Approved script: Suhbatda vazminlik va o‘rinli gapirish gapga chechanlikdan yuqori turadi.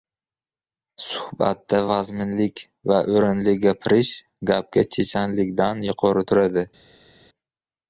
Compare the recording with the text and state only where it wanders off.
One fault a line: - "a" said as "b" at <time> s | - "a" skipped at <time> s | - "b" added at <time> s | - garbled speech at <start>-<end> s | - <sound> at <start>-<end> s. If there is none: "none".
none